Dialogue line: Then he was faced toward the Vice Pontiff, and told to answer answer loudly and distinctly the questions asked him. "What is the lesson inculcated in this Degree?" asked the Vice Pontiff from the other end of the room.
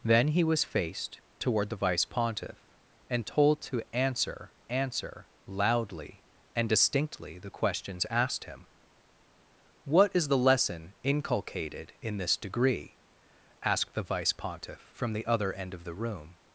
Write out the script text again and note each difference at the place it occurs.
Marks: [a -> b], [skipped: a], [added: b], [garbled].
Then he was faced toward the Vice Pontiff, and told to answer answer loudly and distinctly the questions asked him. "What is the lesson inculcated in this Degree?" asked the Vice Pontiff from the other end of the room.